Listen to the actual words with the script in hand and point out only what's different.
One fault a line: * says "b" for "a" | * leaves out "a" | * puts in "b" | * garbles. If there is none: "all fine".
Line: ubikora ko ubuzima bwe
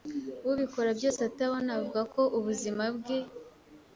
* puts in "byose atabona avuga"